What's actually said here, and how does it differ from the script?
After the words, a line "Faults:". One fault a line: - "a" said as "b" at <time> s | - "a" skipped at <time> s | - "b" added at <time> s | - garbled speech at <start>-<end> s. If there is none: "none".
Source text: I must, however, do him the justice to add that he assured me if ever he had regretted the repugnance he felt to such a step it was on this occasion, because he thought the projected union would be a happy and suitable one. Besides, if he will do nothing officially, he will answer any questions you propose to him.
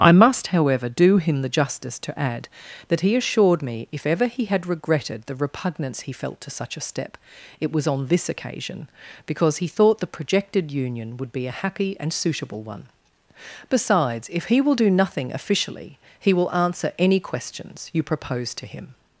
I must, however, do him the justice to add that he assured me if ever he had regretted the repugnance he felt to such a step it was on this occasion, because he thought the projected union would be a happy and suitable one. Besides, if he will do nothing officially, he will answer any questions you propose to him.
Faults:
none